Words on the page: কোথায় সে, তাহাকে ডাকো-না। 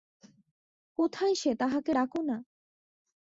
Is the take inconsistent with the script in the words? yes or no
no